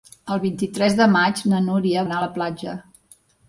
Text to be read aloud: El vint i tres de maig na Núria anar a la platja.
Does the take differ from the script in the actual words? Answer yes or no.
no